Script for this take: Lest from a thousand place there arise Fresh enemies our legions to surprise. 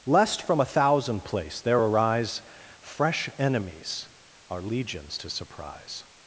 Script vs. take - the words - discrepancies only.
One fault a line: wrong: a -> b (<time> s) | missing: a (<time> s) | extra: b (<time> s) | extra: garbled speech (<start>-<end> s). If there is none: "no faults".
no faults